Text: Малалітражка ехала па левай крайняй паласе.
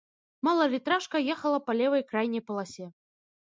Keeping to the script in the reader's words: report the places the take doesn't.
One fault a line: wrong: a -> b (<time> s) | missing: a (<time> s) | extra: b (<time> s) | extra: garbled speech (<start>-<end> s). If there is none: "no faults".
no faults